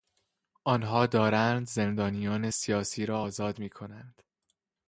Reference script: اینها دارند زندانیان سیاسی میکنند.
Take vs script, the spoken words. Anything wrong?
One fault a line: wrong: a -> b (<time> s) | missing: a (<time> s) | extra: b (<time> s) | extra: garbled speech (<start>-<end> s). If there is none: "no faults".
wrong: اینها -> آنها (0.6 s)
extra: را آزاد (3.1 s)